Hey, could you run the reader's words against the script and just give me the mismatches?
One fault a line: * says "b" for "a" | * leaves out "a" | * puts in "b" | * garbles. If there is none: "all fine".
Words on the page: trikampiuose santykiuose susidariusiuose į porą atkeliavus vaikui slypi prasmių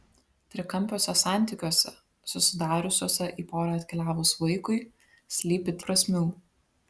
all fine